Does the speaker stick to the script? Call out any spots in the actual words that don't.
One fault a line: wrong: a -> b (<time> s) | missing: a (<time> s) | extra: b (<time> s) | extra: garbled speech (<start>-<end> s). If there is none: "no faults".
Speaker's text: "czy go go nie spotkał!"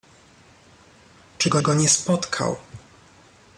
no faults